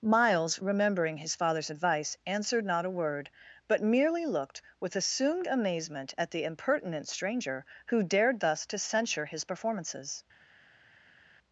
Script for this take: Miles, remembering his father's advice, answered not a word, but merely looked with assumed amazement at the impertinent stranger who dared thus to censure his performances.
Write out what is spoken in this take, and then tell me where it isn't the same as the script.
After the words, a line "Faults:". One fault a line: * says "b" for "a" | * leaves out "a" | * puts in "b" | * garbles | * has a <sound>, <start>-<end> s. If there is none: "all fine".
Miles, remembering his father's advice, answered not a word, but merely looked with assumed amazement at the impertinent stranger who dared thus to censure his performances.
Faults:
all fine